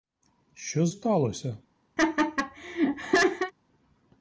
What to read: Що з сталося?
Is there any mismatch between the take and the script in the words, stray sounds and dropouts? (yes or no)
yes